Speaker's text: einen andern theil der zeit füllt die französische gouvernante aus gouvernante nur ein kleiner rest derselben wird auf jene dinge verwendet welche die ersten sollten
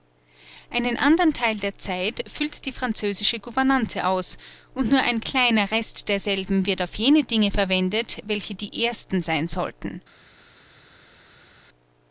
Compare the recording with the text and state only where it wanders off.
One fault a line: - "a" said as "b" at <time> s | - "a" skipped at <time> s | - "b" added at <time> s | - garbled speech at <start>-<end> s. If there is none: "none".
- "gouvernante" said as "und" at 4.7 s
- "sein" added at 9.2 s